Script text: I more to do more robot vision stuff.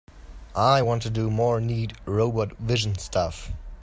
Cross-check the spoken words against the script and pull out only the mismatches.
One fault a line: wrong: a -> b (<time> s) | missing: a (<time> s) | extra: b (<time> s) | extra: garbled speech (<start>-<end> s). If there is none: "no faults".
wrong: more -> want (0.8 s)
extra: neat (1.6 s)